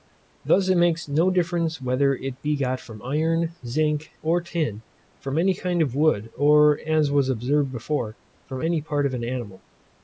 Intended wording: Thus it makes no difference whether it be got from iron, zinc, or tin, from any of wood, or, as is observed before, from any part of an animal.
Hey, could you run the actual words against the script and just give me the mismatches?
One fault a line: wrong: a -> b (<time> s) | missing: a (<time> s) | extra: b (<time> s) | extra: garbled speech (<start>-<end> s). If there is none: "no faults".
extra: kind (5.5 s)
wrong: is -> was (7.1 s)